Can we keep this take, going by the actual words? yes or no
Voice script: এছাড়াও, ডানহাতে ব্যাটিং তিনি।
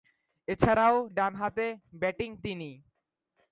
yes